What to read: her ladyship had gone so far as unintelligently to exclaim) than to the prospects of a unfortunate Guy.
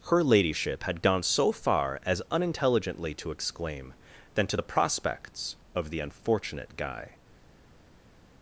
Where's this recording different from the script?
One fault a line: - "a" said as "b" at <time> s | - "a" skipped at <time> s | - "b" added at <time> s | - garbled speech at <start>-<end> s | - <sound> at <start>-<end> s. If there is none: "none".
- "a" said as "the" at 5.9 s